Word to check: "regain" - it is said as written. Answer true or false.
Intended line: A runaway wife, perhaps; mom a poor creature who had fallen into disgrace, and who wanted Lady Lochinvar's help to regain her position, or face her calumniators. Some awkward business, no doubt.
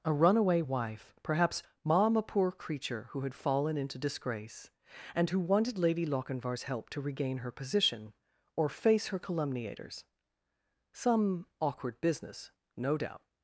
true